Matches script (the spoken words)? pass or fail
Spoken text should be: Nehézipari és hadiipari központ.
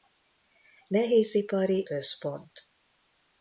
fail